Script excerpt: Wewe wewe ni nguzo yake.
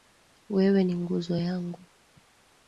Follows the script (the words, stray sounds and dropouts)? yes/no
no